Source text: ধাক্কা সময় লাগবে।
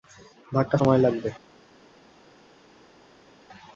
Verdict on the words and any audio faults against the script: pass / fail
pass